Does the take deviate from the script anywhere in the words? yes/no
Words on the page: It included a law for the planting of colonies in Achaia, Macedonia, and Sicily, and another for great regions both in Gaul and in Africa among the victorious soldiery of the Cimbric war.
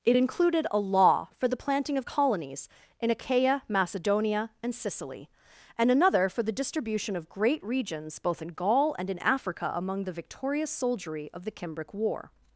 yes